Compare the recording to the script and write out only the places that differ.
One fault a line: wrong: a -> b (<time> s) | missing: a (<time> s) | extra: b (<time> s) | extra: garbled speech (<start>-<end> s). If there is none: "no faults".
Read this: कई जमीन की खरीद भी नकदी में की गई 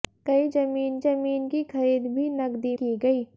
extra: जमीन (1.0 s)
missing: में (2.7 s)